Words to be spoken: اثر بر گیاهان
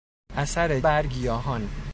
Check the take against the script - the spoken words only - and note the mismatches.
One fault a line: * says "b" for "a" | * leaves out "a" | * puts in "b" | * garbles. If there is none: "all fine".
all fine